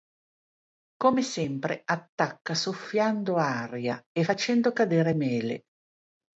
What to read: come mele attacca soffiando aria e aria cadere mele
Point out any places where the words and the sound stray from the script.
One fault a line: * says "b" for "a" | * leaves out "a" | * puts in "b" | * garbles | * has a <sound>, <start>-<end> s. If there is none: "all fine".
* says "sempre" for "mele"
* says "facendo" for "aria"